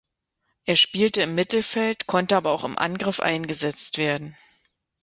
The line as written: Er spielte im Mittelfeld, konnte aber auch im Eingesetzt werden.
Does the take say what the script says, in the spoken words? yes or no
no